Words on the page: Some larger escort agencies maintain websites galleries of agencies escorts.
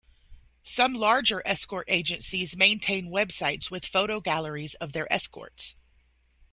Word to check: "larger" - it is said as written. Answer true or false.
true